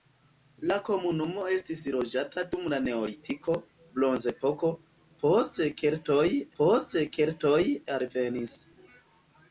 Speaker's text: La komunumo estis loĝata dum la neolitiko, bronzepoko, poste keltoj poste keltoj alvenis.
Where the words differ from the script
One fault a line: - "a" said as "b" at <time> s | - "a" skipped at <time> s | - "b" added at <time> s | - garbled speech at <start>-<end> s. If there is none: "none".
none